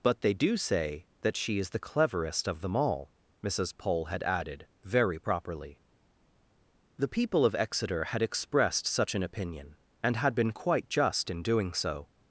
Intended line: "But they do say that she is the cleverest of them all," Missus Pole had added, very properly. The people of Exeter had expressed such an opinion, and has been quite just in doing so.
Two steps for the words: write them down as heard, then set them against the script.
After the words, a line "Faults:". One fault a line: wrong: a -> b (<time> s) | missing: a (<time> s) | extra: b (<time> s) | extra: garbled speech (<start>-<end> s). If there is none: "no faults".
"But they do say that she is the cleverest of them all," Missus Pole had added, very properly. The people of Exeter had expressed such an opinion, and had been quite just in doing so.
Faults:
wrong: has -> had (10.2 s)